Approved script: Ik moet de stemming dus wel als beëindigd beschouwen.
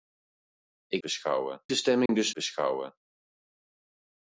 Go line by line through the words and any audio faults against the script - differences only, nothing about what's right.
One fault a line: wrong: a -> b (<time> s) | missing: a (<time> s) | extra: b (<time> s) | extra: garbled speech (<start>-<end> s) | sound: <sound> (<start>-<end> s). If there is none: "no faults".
wrong: moet -> beschouwen (1.0 s)
sound: dropout (2.1-2.1 s)
missing: wel als beëindigd (2.3 s)